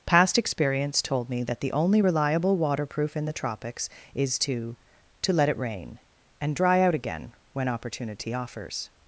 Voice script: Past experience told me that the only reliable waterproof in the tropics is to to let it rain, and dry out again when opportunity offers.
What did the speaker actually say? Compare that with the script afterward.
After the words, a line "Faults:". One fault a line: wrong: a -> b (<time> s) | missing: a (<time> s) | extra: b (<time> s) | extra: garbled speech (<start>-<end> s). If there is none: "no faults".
Past experience told me that the only reliable waterproof in the tropics is to to let it rain, and dry out again when opportunity offers.
Faults:
no faults